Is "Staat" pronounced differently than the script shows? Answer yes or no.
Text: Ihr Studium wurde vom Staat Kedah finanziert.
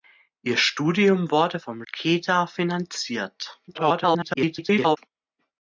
yes